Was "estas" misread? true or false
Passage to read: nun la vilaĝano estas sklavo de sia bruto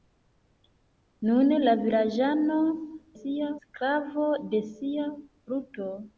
true